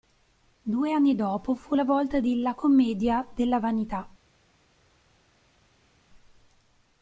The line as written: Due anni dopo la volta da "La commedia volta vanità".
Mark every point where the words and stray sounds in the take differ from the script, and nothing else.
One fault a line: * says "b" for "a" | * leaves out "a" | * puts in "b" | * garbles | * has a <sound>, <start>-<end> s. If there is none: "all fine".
* puts in "fu"
* says "di" for "da"
* says "della" for "volta"